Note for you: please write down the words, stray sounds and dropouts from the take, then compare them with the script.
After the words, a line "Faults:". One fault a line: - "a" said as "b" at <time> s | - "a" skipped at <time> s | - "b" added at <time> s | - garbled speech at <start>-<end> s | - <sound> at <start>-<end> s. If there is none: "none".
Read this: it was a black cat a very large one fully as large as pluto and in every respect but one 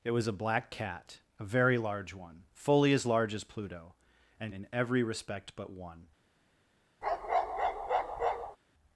it was a black cat a very large one fully as large as pluto and in every respect but one
Faults:
- bark at 7.0-8.6 s